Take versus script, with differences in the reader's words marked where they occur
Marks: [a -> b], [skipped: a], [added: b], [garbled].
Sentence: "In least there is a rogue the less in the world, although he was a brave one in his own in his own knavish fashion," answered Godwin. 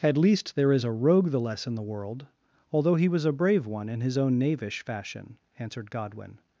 ["In -> At] least there is a rogue the less in the world, although he was a brave one in his own [skipped: in his own] knavish fashion," answered Godwin.